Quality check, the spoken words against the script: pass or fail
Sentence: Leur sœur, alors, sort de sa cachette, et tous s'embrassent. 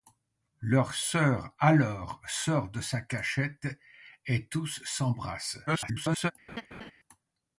fail